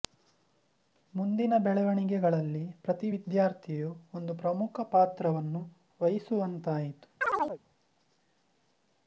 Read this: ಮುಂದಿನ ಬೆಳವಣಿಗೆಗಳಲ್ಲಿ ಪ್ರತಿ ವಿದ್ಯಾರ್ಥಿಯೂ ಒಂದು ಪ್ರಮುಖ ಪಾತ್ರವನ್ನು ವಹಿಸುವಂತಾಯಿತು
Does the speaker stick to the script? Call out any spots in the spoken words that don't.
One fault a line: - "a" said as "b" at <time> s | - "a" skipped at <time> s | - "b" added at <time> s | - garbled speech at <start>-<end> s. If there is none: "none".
none